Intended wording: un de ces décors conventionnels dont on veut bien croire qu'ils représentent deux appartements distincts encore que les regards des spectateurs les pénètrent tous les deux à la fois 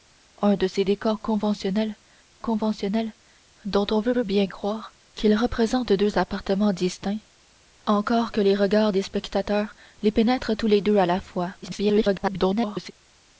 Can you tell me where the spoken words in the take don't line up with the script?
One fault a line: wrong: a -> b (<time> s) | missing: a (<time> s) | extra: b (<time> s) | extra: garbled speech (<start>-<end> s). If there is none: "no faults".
extra: conventionnels (2.4 s)
extra: veut (4.1 s)
extra: garbled speech (11.6-12.9 s)